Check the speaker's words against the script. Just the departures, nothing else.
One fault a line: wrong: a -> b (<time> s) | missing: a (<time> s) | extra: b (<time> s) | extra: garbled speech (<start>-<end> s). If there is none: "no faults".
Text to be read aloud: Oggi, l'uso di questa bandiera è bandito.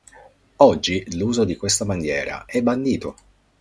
no faults